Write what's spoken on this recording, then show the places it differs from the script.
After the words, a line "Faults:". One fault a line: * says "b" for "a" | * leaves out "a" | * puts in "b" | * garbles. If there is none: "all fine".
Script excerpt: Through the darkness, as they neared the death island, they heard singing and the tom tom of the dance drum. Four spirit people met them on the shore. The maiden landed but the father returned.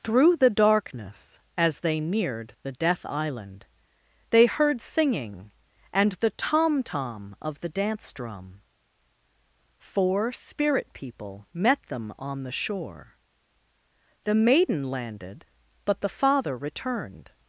Through the darkness, as they neared the death island, they heard singing and the tom tom of the dance drum. Four spirit people met them on the shore. The maiden landed but the father returned.
Faults:
all fine